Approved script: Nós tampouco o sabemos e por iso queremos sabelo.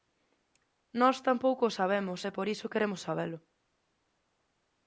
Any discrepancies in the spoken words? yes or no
no